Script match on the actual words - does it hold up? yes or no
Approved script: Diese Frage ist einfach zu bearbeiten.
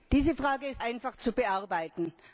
yes